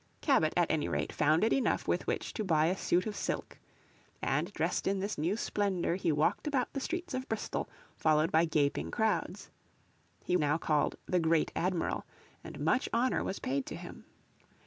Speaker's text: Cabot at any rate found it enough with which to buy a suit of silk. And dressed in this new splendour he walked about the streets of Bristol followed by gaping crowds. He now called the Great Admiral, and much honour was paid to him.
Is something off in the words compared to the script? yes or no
no